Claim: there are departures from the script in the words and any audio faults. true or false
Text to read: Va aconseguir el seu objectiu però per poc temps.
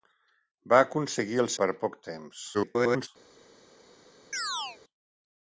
true